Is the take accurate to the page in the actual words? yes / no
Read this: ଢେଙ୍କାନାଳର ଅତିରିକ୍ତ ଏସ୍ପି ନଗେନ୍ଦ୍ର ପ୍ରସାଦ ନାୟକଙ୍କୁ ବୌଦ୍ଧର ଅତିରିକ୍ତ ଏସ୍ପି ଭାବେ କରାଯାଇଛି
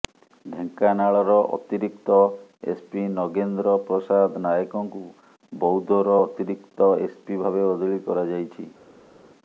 no